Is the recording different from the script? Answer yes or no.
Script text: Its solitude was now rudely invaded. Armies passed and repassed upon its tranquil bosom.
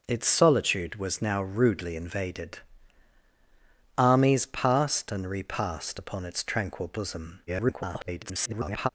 yes